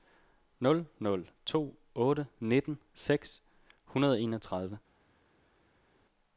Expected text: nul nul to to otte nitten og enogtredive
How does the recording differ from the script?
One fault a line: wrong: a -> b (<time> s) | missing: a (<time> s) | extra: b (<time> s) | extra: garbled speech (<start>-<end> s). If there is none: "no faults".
missing: to (1.8 s)
extra: seks hundrede (2.9 s)